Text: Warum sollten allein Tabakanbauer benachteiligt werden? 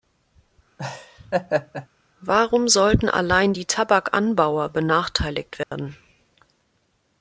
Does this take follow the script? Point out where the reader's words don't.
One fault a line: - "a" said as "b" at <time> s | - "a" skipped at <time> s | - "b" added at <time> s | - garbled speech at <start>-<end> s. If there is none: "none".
- "die" added at 3.5 s